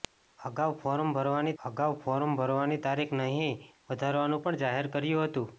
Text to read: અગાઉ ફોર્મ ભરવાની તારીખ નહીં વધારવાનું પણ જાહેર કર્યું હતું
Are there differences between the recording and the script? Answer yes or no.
yes